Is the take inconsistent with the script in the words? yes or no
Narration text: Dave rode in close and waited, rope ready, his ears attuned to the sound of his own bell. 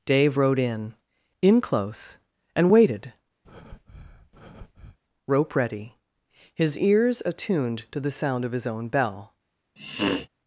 yes